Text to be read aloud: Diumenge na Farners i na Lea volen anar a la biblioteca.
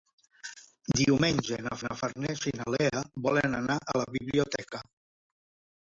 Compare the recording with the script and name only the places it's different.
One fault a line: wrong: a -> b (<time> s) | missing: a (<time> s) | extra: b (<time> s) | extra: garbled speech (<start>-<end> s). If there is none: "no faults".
extra: na (1.8 s)